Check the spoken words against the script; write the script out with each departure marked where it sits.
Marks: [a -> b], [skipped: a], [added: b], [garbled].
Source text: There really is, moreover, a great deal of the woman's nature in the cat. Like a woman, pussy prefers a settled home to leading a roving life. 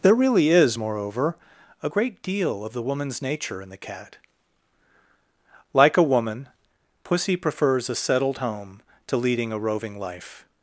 There really is, moreover, a great deal of the woman's nature in the cat. Like a woman, pussy prefers a settled home to leading a roving life.